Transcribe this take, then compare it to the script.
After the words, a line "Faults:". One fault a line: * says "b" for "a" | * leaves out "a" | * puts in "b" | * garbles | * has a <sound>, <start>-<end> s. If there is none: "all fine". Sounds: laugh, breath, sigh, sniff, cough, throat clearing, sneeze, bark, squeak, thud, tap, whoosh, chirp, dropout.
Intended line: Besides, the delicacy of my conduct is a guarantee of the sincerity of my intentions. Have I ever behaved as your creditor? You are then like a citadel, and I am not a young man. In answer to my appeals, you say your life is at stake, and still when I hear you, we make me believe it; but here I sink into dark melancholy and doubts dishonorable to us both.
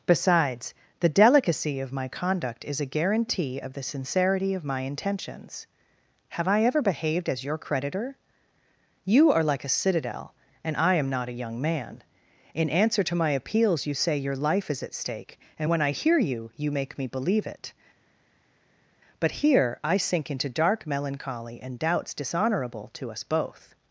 Besides, the delicacy of my conduct is a guarantee of the sincerity of my intentions. Have I ever behaved as your creditor? You are like a citadel, and I am not a young man. In answer to my appeals, you say your life is at stake, and when I hear you, you make me believe it; but here I sink into dark melancholy and doubts dishonorable to us both.
Faults:
* leaves out "then"
* leaves out "still"
* says "you" for "we"